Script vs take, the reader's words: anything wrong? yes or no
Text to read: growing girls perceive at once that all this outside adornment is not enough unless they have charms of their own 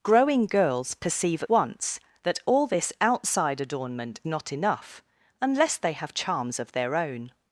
yes